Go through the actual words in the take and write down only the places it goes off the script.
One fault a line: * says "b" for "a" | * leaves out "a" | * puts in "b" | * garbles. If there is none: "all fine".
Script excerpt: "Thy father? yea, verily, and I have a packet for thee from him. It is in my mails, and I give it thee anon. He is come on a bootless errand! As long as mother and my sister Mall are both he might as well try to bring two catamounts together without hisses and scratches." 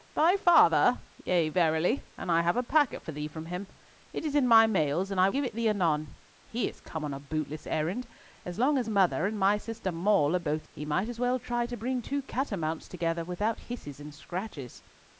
all fine